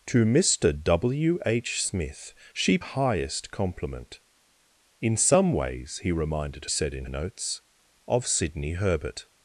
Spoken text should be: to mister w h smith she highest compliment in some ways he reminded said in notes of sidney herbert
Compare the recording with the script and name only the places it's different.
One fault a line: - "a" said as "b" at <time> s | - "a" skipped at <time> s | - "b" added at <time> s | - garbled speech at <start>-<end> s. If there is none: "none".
none